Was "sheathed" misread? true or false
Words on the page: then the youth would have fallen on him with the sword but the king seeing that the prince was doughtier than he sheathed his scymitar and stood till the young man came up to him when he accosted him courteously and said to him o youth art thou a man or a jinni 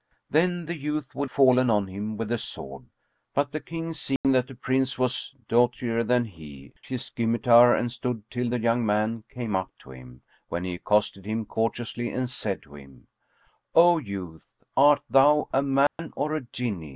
true